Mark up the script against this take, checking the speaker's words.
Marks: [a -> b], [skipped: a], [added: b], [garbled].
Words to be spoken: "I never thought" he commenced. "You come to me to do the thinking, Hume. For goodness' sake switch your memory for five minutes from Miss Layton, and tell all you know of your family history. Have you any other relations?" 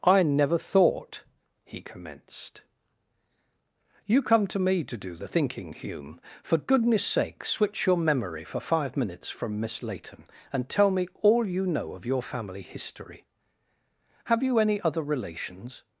"I never thought" he commenced. "You come to me to do the thinking, Hume. For goodness' sake switch your memory for five minutes from Miss Layton, and tell [added: me] all you know of your family history. Have you any other relations?"